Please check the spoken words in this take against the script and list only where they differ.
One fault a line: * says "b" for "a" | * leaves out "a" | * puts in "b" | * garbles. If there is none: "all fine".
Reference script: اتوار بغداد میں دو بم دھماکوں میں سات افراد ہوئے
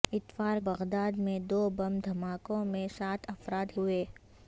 all fine